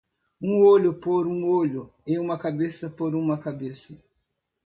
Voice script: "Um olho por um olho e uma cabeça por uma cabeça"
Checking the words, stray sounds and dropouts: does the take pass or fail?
pass